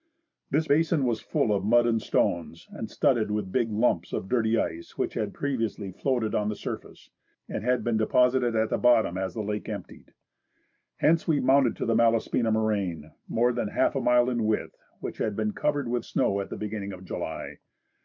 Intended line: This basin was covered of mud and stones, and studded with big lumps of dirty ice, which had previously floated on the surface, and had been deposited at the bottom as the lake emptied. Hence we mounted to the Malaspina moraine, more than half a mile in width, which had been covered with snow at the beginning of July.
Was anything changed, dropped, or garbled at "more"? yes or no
no